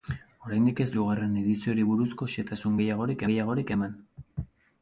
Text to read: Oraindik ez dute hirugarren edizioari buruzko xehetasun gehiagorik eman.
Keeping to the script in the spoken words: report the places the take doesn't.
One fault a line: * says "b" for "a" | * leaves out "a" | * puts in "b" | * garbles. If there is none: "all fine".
* leaves out "dute"
* puts in "gehiagorik"